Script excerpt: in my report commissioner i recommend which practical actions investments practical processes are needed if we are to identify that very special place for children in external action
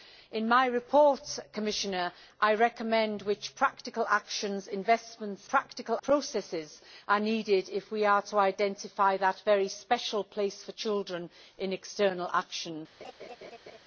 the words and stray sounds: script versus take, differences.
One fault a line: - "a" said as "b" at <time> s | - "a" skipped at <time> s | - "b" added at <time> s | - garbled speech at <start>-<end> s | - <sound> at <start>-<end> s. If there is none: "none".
- laugh at 13.0-13.8 s